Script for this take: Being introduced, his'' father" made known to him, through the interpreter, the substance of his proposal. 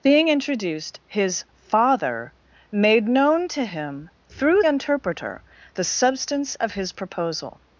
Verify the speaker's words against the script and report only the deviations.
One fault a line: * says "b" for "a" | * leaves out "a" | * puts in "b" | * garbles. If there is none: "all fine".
* leaves out "the"